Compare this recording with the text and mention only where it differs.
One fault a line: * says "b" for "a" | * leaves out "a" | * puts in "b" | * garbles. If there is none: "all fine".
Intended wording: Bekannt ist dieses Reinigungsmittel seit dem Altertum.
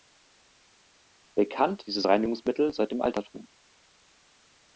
* leaves out "ist"